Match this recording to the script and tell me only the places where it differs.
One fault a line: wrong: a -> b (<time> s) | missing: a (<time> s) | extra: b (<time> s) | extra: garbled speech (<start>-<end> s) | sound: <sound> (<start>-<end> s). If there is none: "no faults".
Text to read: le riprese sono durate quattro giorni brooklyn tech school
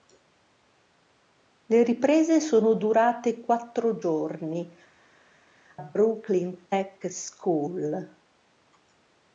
no faults